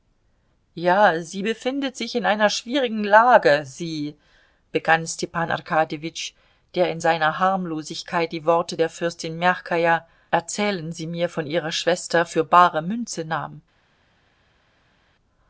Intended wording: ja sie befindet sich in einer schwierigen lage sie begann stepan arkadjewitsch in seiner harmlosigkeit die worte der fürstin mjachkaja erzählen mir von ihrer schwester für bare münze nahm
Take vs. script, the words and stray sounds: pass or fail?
fail